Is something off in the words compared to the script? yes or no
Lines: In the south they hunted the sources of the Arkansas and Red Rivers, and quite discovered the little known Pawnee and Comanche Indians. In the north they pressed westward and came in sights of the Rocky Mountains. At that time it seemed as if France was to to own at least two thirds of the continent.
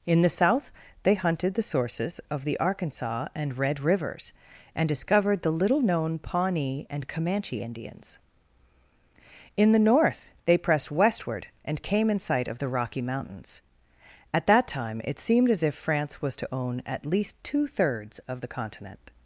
yes